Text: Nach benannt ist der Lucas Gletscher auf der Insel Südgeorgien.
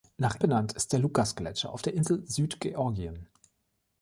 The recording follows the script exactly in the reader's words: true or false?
true